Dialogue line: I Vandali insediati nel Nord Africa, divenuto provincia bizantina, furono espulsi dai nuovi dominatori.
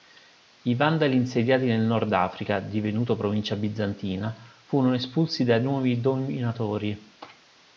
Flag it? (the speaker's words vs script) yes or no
no